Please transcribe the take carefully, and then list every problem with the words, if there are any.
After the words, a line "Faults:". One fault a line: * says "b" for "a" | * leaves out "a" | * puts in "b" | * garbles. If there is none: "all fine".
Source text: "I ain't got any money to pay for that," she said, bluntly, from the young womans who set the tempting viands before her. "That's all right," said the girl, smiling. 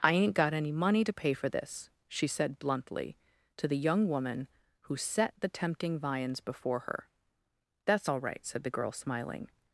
"I ain't got any money to pay for this," she said, bluntly, to the young woman who set the tempting viands before her. "That's all right," said the girl, smiling.
Faults:
* says "this" for "that"
* says "to" for "from"
* says "woman" for "womans"